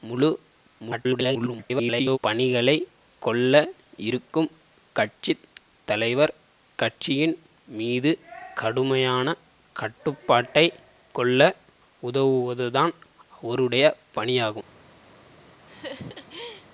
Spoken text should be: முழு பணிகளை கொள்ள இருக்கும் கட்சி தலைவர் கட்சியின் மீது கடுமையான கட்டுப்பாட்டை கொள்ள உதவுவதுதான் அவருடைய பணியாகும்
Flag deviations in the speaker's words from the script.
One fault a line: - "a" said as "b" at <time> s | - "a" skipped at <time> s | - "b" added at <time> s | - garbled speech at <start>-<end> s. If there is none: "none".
- garbled speech at 0.8-2.2 s